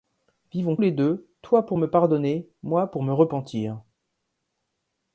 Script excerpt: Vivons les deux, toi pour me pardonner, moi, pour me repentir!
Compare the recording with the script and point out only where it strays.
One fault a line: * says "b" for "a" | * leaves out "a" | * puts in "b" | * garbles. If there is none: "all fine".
all fine